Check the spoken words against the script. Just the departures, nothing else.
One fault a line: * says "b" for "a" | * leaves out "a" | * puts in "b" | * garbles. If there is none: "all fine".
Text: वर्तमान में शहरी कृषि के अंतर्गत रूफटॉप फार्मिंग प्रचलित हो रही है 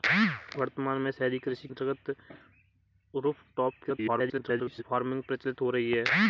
* leaves out "के"
* garbles